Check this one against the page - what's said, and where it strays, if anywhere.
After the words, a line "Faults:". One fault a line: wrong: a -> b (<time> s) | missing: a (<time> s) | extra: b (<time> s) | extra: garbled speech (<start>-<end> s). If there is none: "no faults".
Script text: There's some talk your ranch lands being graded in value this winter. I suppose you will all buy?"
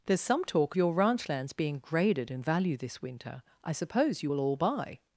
There's some talk your ranch lands being graded in value this winter. I suppose you will all buy?"
Faults:
no faults